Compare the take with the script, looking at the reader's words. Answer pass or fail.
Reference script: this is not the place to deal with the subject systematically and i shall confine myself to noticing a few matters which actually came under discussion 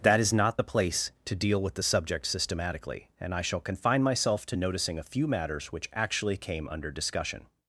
fail